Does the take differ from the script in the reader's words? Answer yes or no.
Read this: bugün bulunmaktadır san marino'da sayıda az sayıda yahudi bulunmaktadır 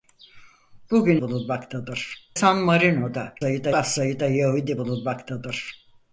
no